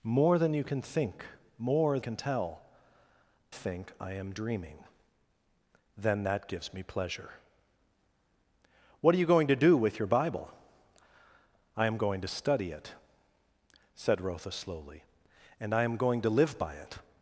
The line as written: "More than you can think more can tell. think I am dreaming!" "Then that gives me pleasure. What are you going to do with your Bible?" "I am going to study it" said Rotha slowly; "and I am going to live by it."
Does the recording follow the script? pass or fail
pass